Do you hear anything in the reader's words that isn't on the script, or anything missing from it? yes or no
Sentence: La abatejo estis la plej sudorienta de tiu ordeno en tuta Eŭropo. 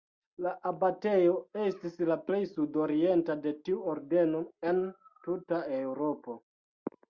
no